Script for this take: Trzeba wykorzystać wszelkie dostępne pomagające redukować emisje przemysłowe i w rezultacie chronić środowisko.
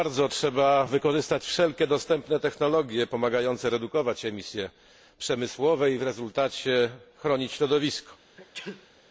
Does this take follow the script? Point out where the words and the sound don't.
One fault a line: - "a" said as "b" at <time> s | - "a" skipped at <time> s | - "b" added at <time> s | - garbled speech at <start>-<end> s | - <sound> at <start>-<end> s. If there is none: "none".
- "technologie" added at 2.4 s
- sneeze at 8.4-8.9 s